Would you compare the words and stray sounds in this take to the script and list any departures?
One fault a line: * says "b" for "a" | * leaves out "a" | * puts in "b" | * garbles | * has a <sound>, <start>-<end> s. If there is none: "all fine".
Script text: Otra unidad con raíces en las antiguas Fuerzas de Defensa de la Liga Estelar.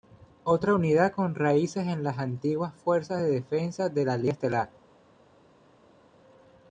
all fine